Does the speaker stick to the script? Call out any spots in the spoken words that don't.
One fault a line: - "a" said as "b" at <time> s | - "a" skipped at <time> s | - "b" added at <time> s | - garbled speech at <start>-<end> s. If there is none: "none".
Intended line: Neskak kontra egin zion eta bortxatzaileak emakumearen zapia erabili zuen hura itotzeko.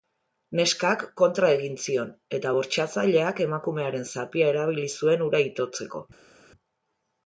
none